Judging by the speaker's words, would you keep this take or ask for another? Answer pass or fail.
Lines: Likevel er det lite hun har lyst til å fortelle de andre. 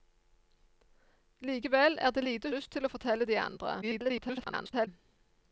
fail